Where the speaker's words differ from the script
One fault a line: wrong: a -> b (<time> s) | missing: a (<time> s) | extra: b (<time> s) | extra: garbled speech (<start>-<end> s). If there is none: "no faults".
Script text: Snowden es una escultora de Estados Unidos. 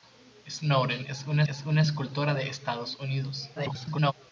extra: es una (1.5 s)
extra: garbled speech (3.6-4.1 s)